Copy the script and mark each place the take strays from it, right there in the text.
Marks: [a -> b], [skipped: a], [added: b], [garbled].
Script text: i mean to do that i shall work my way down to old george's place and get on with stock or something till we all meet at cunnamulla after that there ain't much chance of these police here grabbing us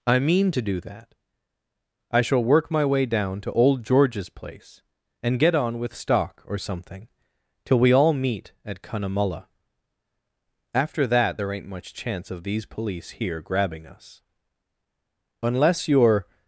i mean to do that i shall work my way down to old george's place and get on with stock or something till we all meet at cunnamulla after that there ain't much chance of these police here grabbing us [added: unless you're]